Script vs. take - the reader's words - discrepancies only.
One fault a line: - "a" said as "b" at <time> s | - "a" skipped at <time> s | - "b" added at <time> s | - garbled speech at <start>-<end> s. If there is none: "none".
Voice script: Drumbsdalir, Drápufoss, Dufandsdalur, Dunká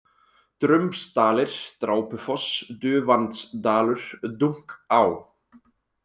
none